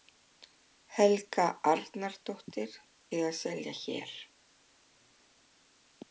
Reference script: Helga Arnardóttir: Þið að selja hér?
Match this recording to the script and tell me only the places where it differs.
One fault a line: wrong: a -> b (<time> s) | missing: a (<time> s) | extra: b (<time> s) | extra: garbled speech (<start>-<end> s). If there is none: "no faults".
no faults